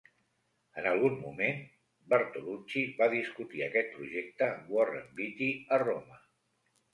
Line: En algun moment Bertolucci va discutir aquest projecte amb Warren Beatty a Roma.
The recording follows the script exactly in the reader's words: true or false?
true